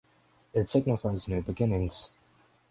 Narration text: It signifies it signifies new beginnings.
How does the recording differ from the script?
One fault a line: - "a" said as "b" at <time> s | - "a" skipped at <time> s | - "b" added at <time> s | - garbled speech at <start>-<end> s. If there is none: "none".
- "it signifies" skipped at 1.3 s